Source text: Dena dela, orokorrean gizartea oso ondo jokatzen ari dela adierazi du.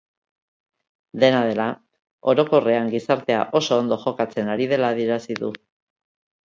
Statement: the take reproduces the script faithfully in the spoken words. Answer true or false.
true